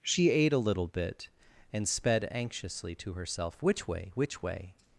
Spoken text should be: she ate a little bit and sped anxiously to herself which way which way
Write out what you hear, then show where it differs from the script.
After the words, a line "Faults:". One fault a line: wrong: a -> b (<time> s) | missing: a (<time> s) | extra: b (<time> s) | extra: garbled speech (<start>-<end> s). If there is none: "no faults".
she ate a little bit and sped anxiously to herself which way which way
Faults:
no faults